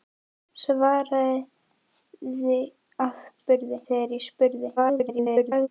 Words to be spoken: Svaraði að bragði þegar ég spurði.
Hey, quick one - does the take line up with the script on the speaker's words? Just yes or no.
no